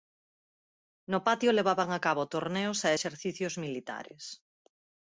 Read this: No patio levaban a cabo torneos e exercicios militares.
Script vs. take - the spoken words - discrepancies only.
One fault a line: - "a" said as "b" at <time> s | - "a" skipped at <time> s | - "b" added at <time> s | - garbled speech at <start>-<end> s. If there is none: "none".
none